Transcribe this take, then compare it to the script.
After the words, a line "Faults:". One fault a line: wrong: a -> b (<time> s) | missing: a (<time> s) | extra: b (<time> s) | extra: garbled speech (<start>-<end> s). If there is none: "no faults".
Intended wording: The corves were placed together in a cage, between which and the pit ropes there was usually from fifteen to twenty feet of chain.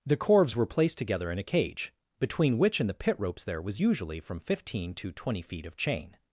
The corves were placed together in a cage, between which and the pit ropes there was usually from fifteen to twenty feet of chain.
Faults:
no faults